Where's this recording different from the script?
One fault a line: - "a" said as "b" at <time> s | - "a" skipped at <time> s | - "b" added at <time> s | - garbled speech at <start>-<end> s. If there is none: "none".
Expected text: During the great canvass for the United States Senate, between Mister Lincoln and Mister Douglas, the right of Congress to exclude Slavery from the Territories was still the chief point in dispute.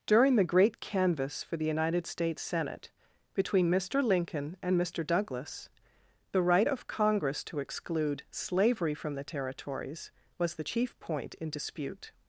- "still" skipped at 10.5 s